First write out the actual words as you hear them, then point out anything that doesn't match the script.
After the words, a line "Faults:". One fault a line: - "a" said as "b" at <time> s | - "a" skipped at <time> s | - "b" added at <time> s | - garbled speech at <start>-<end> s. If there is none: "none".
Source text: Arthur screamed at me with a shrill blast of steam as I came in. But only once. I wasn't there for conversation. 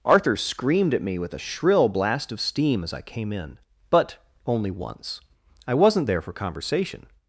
Arthur screamed at me with a shrill blast of steam as I came in. But only once. I wasn't there for conversation.
Faults:
none